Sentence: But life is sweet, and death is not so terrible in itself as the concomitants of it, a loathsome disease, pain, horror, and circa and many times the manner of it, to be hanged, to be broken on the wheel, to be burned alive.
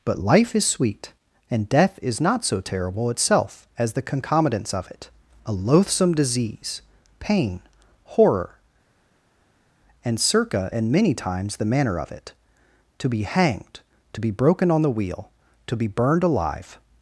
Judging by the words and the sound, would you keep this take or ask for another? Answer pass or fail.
fail